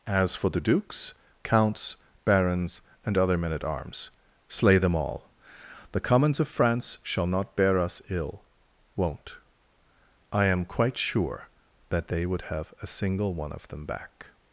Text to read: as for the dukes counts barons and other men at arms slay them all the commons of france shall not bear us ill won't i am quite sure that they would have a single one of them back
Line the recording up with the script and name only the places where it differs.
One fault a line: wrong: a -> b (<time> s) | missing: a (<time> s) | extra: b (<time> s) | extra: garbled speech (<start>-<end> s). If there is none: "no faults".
no faults